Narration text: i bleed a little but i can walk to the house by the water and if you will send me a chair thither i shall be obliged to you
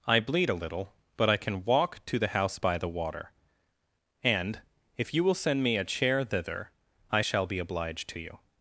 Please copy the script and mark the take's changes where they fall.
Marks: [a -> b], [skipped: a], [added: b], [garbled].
i bleed a little but i can walk to the house by the water and if you will send me a chair thither i shall be obliged to you